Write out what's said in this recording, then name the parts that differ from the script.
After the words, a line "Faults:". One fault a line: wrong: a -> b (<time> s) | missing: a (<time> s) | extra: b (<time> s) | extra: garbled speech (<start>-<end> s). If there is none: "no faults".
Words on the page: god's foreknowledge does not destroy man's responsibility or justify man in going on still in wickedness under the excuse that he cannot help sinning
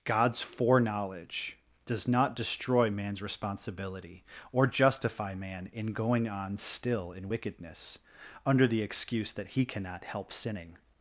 god's foreknowledge does not destroy man's responsibility or justify man in going on still in wickedness under the excuse that he cannot help sinning
Faults:
no faults